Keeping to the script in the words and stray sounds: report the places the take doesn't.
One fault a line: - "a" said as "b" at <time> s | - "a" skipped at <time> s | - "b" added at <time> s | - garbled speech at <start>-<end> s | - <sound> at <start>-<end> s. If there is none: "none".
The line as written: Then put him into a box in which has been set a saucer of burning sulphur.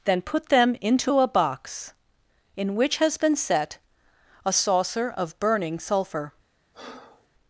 - "him" said as "them" at 0.5 s
- breath at 6.7-7.3 s